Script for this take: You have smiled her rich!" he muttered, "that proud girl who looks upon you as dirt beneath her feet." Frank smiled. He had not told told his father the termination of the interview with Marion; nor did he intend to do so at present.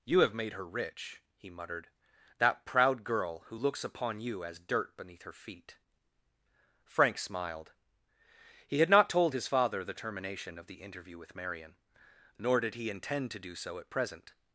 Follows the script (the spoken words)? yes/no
no